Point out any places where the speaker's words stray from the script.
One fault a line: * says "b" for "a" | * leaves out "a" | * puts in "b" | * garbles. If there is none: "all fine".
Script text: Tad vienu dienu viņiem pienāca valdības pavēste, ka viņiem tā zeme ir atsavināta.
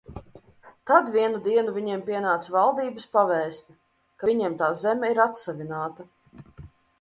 all fine